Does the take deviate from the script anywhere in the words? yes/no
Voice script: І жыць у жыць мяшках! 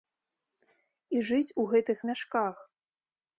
yes